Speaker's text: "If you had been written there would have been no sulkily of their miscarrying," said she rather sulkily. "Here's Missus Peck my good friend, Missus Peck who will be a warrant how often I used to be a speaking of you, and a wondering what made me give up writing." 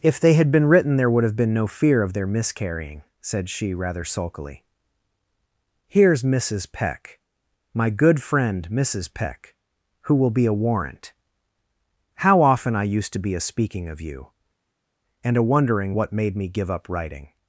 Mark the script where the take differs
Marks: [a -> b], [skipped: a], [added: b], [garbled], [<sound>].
"If [you -> they] had been written there would have been no [sulkily -> fear] of their miscarrying," said she rather sulkily. "Here's Missus Peck my good friend, Missus Peck who will be a warrant how often I used to be a speaking of you, and a wondering what made me give up writing."